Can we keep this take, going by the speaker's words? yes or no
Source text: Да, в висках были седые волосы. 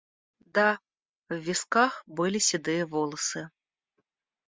yes